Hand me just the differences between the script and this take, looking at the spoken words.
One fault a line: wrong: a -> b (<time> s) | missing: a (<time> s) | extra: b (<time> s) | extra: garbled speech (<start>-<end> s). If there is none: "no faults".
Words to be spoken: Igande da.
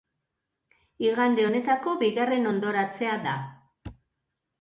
extra: honetako bigarren hondoratzea (1.5 s)